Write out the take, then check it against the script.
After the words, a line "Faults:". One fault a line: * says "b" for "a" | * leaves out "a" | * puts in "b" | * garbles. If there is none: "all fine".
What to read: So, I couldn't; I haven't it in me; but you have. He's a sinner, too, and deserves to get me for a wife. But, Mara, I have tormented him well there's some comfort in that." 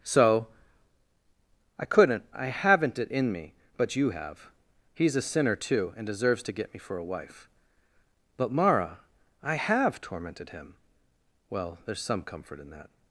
So, I couldn't; I haven't it in me; but you have. He's a sinner, too, and deserves to get me for a wife. But, Mara, I have tormented him well there's some comfort in that."
Faults:
all fine